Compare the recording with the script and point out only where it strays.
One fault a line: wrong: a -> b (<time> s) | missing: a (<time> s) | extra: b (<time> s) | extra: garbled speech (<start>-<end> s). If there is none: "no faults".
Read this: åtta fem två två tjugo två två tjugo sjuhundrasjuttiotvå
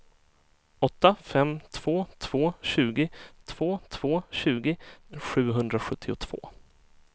no faults